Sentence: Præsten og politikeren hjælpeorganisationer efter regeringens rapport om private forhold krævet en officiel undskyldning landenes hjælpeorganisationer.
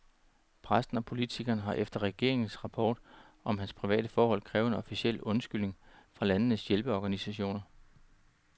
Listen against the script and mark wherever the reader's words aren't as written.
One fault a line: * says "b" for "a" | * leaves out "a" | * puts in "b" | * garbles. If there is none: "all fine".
* says "har" for "hjælpeorganisationer"
* puts in "hans"
* puts in "fra"